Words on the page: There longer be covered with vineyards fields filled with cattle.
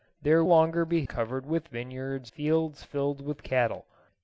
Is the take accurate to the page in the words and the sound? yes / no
yes